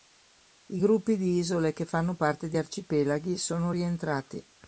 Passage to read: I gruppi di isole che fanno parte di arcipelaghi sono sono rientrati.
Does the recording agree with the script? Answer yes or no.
no